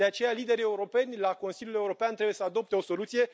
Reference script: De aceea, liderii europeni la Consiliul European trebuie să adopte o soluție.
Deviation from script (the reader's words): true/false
false